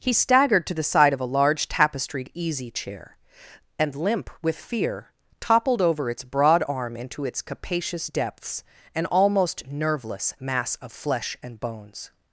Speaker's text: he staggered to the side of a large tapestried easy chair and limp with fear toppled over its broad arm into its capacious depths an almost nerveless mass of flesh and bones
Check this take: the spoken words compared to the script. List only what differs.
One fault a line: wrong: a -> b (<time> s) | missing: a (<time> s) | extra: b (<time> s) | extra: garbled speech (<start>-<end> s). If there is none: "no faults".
no faults